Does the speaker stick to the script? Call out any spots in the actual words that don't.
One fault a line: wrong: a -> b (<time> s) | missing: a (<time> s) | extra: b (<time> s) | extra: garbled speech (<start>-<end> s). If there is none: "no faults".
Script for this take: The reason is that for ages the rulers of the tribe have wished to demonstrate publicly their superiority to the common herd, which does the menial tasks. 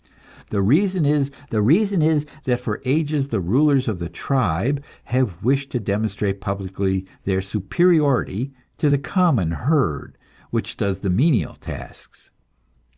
extra: the reason is (1.5 s)